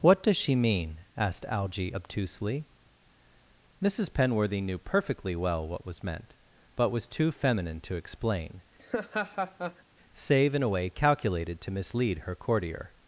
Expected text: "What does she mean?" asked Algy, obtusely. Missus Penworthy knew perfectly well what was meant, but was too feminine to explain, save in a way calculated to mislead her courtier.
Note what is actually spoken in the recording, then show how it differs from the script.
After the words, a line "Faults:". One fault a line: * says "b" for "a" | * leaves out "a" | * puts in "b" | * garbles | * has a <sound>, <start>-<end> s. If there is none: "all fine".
"What does she mean?" asked Algy, obtusely. Missus Penworthy knew perfectly well what was meant, but was too feminine to explain, save in a way calculated to mislead her courtier.
Faults:
* has a laugh, 8.8-9.8 s